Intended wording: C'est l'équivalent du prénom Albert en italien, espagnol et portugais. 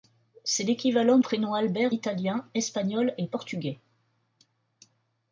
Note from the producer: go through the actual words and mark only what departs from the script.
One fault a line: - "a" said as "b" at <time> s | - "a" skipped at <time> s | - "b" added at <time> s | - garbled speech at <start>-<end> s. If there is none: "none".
- "du" skipped at 1.2 s
- "en" skipped at 1.9 s